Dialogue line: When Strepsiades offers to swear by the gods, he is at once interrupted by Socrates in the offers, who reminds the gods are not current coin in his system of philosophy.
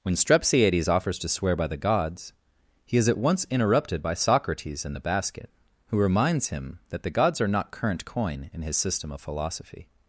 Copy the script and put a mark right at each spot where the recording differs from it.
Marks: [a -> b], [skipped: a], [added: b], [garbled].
When Strepsiades offers to swear by the gods, he is at once interrupted by Socrates in the [offers, -> basket] who reminds [added: him that] the gods are not current coin in his system of philosophy.